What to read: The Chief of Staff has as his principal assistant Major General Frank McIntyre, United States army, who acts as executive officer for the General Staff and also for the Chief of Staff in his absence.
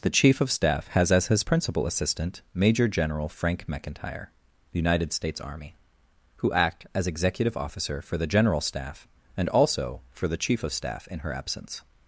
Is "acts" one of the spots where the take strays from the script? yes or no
yes